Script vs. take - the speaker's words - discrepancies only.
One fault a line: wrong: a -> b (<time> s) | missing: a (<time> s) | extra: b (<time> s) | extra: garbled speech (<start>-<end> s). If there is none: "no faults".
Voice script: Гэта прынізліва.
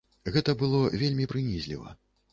extra: было вельмі (0.6 s)